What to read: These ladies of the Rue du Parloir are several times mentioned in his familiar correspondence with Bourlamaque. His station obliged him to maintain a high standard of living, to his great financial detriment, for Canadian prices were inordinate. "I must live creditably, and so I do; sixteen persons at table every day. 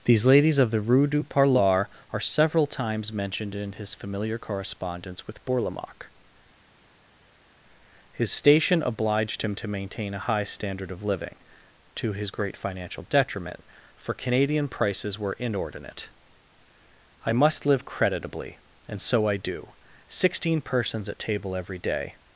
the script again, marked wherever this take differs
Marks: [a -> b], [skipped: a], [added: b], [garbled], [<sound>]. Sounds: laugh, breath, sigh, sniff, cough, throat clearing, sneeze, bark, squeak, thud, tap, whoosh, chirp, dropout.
These ladies of the Rue du Parloir are several times mentioned in his familiar correspondence with Bourlamaque. His station obliged him to maintain a high standard of living, to his great financial detriment, for Canadian prices were inordinate. "I must live creditably, and so I do; sixteen persons at table every day.